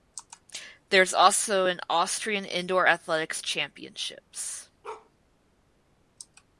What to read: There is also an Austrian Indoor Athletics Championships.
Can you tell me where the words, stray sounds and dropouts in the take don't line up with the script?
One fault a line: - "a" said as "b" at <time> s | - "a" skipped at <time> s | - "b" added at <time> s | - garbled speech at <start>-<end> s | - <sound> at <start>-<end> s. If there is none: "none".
- bark at 4.8-5.1 s